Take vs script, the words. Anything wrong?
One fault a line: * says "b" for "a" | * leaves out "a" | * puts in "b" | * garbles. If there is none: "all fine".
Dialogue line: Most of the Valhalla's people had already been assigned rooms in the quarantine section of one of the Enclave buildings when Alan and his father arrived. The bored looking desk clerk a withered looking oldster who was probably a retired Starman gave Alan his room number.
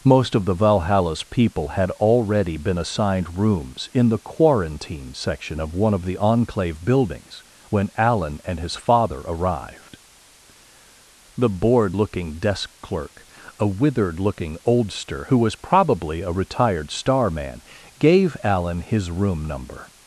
all fine